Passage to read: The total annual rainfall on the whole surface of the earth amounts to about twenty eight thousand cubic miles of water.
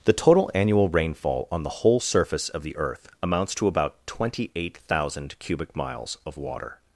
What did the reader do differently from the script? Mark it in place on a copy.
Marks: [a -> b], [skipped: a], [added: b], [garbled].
The total annual rainfall on the whole surface of the earth amounts to about twenty eight thousand cubic miles of water.